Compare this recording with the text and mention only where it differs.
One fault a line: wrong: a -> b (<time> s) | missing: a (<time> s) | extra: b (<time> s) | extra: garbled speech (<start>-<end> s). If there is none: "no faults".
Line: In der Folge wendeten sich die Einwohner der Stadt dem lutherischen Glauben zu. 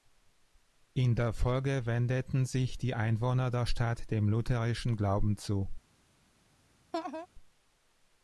no faults